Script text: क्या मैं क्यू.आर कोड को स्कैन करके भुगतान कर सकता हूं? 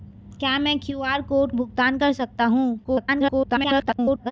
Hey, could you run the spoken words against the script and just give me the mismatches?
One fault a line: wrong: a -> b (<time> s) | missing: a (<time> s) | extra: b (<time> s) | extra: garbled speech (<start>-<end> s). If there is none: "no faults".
missing: को स्कैन करके (1.5 s)
extra: garbled speech (2.8-4.3 s)